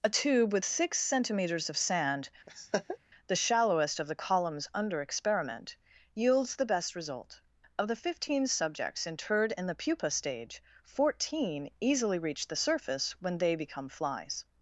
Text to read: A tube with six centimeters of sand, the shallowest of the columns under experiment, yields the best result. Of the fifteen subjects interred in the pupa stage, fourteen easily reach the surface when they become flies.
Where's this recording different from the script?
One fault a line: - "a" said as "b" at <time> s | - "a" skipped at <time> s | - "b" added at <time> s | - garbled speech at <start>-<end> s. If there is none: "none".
none